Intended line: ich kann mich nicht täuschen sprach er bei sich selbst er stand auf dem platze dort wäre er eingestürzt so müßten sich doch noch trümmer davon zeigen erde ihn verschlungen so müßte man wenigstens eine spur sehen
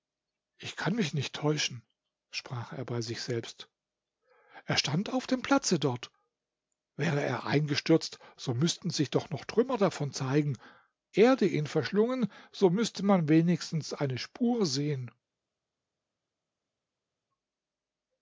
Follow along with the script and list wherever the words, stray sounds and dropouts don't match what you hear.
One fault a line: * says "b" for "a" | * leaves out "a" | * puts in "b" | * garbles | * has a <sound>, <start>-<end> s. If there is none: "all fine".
all fine